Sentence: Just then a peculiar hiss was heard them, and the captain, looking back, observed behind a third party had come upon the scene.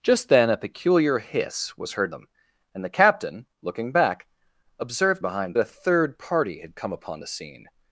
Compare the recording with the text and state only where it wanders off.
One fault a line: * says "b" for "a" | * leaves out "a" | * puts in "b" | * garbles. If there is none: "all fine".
all fine